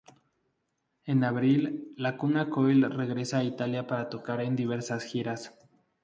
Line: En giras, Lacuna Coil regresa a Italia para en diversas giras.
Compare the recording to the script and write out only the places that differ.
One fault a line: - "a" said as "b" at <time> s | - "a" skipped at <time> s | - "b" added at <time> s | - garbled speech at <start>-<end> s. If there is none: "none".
- "giras" said as "abril" at 1.2 s
- "tocar" added at 4.1 s